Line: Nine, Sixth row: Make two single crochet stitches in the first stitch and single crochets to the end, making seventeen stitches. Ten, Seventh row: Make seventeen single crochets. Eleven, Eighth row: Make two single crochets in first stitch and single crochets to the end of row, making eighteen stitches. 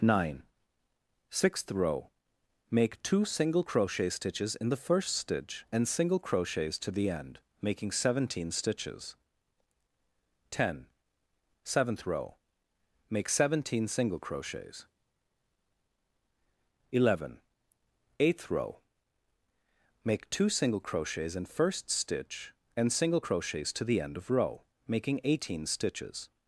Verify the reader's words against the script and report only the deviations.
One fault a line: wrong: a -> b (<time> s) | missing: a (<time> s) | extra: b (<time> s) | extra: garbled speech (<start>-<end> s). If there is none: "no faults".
no faults